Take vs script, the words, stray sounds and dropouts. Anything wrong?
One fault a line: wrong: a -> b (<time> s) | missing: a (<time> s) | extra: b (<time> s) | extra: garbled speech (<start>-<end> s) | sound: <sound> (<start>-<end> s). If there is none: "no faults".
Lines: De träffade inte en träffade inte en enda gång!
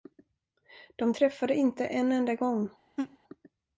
missing: träffade inte en (2.1 s)
sound: laugh (3.0-3.2 s)